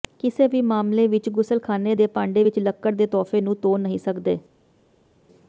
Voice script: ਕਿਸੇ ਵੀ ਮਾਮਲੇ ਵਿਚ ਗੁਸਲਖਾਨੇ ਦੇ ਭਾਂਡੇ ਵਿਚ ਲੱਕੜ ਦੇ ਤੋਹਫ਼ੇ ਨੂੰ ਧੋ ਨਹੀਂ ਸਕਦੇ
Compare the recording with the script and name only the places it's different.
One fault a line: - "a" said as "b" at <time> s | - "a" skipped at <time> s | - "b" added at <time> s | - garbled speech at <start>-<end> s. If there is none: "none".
none